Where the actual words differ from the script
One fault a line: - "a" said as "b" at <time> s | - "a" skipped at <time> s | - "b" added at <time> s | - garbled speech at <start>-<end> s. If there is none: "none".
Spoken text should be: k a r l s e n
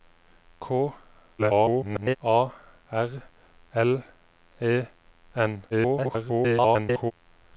- garbled speech at 1.4-2.2 s
- "s" skipped at 4.0 s
- garbled speech at 5.7-7.1 s